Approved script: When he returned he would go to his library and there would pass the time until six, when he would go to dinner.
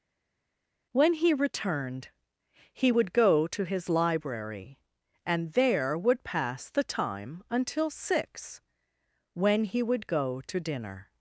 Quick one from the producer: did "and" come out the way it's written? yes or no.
yes